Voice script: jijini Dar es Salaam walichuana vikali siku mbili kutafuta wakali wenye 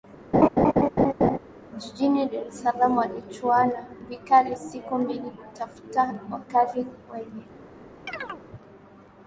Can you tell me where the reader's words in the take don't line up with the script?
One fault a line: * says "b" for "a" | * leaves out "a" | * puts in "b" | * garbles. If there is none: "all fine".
all fine